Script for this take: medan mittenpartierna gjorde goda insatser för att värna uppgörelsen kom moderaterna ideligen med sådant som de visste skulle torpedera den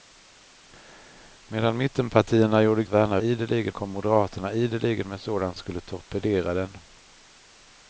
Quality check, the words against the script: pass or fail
fail